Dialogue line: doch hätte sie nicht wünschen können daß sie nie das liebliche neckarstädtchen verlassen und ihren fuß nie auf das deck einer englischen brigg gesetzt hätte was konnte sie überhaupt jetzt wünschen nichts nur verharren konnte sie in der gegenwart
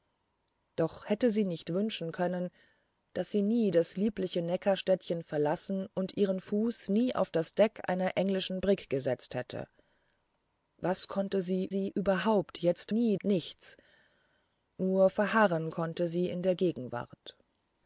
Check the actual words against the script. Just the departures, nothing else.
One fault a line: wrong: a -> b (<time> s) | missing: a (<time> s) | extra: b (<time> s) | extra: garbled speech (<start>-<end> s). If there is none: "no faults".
extra: sie (11.7 s)
wrong: wünschen -> nie (12.9 s)